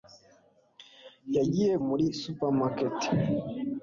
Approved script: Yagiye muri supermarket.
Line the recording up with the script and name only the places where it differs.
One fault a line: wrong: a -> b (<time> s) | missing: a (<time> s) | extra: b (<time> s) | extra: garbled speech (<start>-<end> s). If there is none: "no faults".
no faults